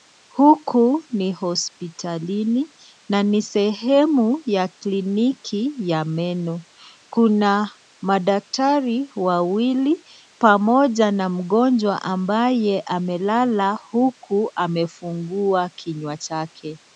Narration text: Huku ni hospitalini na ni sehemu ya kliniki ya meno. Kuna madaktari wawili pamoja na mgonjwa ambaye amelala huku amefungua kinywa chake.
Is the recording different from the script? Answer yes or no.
no